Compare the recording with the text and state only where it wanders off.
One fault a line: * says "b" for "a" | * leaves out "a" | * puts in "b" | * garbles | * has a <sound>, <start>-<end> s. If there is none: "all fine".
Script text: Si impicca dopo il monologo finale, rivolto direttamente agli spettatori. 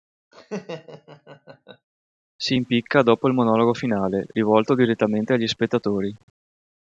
* has a laugh, 0.3-1.9 s